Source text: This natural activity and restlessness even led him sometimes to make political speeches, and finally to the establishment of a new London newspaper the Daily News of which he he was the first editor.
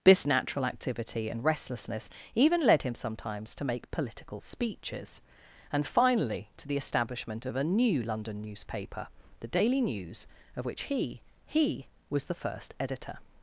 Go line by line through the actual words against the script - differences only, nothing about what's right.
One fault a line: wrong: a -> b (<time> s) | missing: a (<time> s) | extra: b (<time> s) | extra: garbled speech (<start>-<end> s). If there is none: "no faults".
no faults